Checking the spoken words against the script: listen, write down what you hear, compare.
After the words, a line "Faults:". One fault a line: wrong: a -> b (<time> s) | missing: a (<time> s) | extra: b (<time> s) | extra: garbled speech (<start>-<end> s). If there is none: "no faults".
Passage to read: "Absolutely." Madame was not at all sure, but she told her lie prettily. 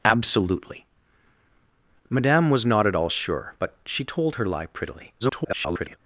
"Absolutely." Madame was not at all sure, but she told her lie prettily. [garbled]
Faults:
extra: garbled speech (5.2-6.0 s)